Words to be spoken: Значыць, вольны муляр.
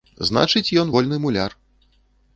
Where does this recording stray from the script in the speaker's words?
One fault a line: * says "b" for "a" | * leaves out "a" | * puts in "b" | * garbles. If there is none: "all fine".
* puts in "ён"